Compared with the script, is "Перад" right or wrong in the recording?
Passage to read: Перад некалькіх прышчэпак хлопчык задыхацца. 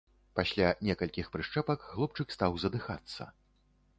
wrong